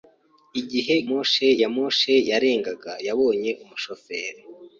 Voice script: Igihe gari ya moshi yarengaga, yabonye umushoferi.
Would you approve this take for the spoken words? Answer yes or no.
no